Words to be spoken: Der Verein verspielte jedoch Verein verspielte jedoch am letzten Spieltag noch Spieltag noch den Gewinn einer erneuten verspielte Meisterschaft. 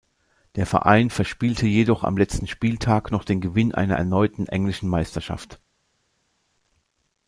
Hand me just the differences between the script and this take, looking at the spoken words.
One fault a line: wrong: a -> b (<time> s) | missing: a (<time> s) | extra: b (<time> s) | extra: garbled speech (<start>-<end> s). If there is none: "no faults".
missing: Verein verspielte jedoch (2.0 s)
missing: Spieltag noch (3.3 s)
wrong: verspielte -> englischen (4.5 s)